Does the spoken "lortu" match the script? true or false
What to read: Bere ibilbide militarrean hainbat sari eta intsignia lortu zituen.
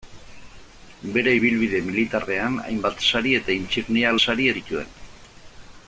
false